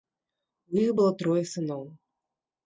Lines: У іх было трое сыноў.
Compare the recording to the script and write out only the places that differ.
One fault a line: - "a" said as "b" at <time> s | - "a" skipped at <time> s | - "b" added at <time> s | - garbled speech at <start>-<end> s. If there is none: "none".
none